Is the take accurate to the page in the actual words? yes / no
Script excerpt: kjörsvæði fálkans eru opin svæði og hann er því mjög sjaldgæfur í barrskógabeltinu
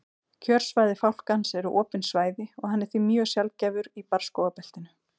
yes